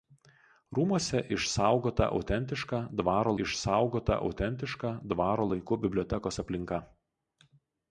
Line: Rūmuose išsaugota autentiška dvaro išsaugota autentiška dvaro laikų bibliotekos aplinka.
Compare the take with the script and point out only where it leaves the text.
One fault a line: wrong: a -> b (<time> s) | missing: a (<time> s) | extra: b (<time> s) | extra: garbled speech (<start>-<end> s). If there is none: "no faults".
no faults